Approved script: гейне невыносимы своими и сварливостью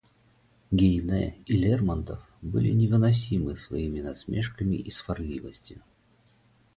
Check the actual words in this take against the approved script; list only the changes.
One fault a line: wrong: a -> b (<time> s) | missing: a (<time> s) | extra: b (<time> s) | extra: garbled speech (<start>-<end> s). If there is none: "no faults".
extra: и лермонтов были (1.4 s)
extra: насмешками (4.0 s)